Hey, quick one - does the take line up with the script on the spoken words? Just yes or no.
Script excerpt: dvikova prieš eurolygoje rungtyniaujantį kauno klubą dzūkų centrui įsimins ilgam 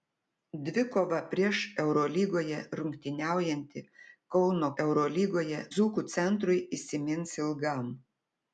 no